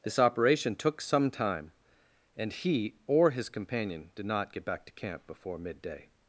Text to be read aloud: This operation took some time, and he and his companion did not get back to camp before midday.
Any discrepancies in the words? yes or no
yes